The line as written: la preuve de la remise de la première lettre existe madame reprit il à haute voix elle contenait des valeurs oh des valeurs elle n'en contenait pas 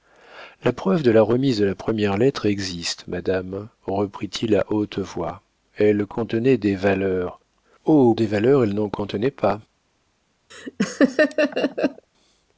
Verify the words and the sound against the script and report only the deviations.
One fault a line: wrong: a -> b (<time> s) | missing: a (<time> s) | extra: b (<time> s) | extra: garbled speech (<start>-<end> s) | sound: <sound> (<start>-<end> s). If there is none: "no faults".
sound: laugh (10.5-12.0 s)